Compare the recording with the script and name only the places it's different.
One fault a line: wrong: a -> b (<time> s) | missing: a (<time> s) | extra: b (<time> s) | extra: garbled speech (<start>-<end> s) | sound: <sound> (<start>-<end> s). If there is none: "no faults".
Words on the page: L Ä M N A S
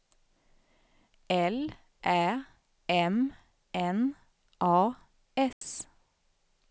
sound: dropout (5.5-5.6 s)